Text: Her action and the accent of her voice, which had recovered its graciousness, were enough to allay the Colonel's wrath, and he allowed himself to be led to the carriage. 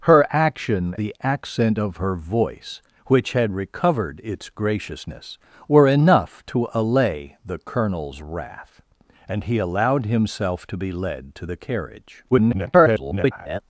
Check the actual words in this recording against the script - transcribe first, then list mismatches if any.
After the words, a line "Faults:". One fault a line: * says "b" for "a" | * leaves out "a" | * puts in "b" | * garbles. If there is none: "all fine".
Her action the accent of her voice, which had recovered its graciousness, were enough to allay the Colonel's wrath, and he allowed himself to be led to the carriage. [garbled]
Faults:
* leaves out "and"
* garbles